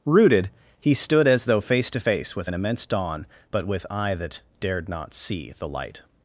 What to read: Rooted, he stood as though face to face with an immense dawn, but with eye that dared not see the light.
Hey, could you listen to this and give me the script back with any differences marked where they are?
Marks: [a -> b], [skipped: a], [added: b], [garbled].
Rooted, he stood as though face to face with an immense dawn, but with eye that dared not see the light.